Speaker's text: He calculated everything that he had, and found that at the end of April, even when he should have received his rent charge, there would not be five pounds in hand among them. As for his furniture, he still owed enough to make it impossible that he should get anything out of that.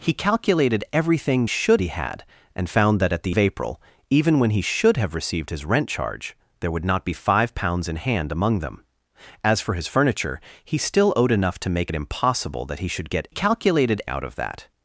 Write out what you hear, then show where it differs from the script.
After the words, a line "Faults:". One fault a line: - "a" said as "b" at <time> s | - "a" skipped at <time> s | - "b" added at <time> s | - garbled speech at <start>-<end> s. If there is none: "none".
He calculated everything should he had, and found that at the of April, even when he should have received his rent charge, there would not be five pounds in hand among them. As for his furniture, he still owed enough to make it impossible that he should get calculated out of that.
Faults:
- "that" said as "should" at 1.5 s
- "end" skipped at 3.4 s
- "anything" said as "calculated" at 13.3 s